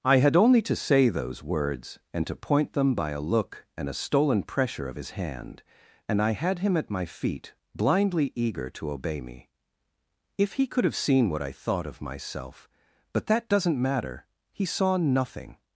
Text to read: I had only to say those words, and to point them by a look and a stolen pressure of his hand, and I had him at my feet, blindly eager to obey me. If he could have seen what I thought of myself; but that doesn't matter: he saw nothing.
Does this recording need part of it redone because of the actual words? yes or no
no